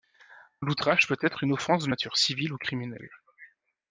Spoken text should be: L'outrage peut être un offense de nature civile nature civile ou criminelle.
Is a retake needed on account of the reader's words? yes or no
yes